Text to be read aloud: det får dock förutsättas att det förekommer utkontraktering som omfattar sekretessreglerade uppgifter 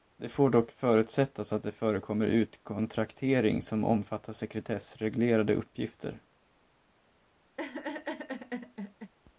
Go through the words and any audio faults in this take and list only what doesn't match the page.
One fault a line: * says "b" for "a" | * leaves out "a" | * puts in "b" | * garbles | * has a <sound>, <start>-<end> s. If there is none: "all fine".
* has a laugh, 7.6-9.1 s